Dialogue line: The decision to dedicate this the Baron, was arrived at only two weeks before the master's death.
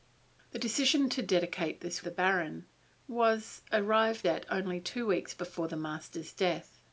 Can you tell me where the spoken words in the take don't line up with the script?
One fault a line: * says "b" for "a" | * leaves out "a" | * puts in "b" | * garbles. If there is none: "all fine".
all fine